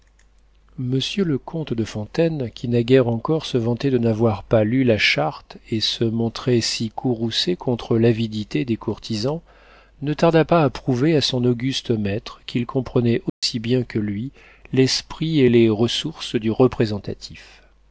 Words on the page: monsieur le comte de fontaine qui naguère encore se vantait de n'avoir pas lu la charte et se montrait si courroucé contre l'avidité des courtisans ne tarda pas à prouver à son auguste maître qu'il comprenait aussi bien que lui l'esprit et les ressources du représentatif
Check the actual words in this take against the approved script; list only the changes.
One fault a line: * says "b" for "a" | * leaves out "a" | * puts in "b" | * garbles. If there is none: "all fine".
all fine